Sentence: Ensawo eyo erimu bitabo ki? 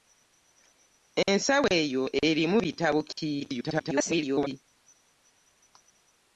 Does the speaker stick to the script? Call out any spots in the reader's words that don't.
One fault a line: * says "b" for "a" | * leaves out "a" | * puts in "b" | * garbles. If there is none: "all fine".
* garbles